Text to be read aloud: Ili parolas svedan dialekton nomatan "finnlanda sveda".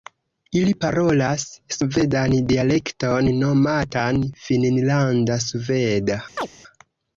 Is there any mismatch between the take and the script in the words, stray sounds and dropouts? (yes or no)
yes